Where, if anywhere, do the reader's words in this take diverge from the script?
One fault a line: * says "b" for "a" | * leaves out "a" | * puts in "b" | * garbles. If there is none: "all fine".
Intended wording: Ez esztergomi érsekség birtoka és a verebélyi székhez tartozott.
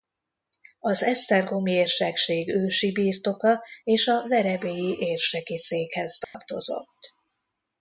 * says "Az" for "Ez"
* puts in "ősi"
* puts in "érseki"